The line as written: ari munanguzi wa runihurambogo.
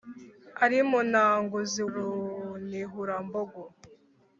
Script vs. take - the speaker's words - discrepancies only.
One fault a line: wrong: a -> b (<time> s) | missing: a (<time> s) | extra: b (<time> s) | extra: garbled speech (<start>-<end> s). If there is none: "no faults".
missing: wa (1.8 s)